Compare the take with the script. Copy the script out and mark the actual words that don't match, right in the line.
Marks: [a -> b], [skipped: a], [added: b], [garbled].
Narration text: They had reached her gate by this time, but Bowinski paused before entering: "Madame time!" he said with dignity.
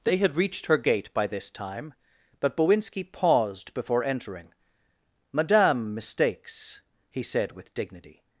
They had reached her gate by this time, but Bowinski paused before entering: "Madame [time!" -> mistakes] he said with dignity.